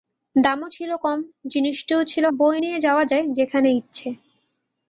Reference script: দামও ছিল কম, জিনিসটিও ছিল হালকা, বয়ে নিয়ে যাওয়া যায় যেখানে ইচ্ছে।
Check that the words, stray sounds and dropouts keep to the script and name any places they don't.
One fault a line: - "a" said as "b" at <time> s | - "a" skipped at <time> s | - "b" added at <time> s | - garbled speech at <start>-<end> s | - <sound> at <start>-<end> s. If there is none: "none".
- "হালকা" skipped at 2.2 s